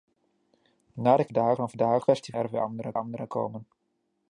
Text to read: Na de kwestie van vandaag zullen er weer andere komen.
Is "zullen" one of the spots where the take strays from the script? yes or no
yes